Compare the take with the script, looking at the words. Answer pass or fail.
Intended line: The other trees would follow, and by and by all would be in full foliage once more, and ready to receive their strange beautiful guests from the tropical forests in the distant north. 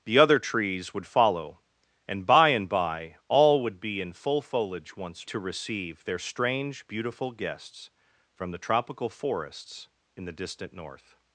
fail